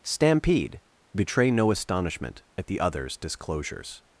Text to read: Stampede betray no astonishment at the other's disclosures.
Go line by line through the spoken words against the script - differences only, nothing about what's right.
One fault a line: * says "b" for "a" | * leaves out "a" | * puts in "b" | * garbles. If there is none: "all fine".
all fine